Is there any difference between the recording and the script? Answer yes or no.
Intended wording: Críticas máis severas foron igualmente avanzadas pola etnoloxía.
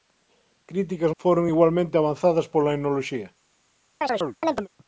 yes